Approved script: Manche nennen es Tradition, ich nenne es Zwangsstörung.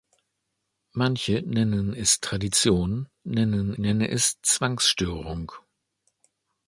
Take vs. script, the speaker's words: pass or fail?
fail